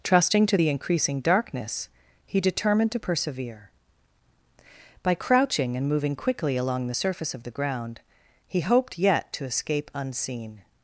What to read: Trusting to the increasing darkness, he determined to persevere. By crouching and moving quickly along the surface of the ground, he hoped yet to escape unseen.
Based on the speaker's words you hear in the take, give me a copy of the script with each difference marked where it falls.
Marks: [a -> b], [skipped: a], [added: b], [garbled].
Trusting to the increasing darkness, he determined to persevere. By crouching and moving quickly along the surface of the ground, he hoped yet to escape unseen.